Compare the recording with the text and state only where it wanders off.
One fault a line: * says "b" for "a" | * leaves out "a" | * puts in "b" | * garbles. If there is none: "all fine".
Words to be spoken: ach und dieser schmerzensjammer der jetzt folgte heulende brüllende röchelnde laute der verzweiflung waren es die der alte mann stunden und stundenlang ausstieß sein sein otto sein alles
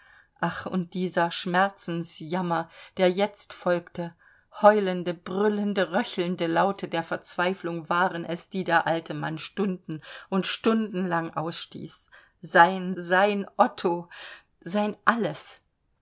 all fine